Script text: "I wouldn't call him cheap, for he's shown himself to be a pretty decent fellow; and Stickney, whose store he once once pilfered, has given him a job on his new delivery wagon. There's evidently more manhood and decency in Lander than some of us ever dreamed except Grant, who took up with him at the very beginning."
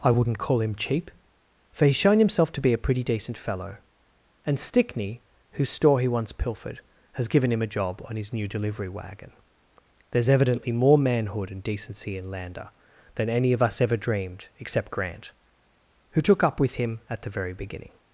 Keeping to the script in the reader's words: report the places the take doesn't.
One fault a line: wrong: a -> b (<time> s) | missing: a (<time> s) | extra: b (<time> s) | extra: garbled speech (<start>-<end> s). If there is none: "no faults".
missing: once (6.3 s)
wrong: some -> any (13.3 s)